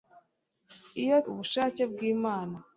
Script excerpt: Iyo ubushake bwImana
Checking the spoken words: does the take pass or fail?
pass